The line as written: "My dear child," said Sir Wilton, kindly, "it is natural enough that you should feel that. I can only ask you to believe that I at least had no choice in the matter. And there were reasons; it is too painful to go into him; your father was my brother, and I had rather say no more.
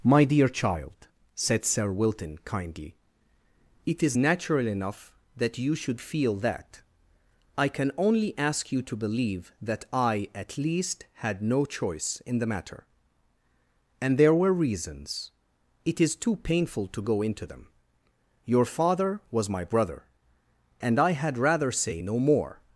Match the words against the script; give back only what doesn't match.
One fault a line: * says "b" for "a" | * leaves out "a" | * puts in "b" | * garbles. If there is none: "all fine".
* says "them" for "him"